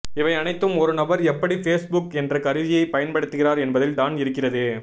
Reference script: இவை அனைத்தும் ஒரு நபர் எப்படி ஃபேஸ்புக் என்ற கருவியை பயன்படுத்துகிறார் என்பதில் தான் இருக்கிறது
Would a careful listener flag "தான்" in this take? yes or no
no